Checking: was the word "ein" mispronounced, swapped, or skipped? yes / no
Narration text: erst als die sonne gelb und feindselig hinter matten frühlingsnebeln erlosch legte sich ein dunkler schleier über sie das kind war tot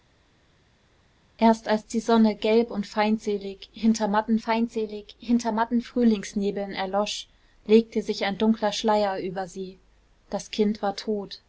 no